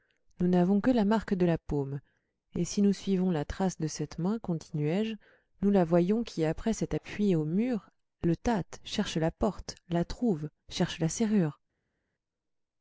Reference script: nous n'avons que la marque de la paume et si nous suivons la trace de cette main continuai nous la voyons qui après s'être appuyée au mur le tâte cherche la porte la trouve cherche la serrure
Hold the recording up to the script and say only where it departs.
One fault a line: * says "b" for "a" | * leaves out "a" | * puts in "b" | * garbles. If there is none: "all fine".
* puts in "je"